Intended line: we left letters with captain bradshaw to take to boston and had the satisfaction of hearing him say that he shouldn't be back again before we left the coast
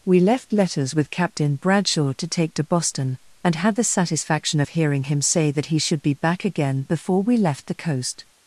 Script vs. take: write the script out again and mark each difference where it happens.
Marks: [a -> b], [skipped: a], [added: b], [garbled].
we left letters with captain bradshaw to take to boston and had the satisfaction of hearing him say that he [shouldn't -> should] be back again before we left the coast